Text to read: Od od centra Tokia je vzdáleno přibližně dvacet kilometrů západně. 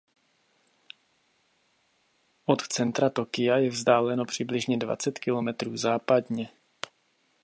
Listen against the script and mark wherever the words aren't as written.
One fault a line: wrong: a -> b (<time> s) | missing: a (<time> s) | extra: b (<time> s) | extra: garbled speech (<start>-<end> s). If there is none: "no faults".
missing: od (2.6 s)